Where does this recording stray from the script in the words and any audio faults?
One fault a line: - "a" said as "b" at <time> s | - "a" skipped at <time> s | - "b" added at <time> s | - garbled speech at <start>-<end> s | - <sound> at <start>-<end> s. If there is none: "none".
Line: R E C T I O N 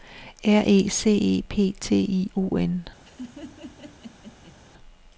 - "E P" added at 1.1 s
- laugh at 3.0-4.6 s